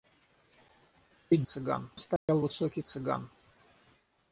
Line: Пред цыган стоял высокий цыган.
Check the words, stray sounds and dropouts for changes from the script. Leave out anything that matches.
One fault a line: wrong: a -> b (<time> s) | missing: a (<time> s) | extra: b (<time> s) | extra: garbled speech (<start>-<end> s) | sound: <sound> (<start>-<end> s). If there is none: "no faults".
sound: dropout (2.2-2.3 s)